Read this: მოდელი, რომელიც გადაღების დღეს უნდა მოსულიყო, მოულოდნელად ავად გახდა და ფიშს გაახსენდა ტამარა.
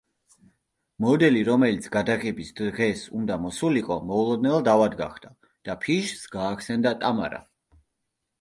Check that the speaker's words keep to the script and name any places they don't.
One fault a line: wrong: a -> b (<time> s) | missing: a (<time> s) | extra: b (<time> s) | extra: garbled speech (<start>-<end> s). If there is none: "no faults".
no faults